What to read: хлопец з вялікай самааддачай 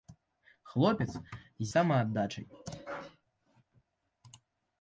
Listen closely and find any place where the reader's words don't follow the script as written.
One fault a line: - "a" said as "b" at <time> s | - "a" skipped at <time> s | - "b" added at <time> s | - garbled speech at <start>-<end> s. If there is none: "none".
- "вялікай" skipped at 1.7 s